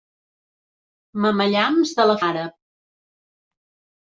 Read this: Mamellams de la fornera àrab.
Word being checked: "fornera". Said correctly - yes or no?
no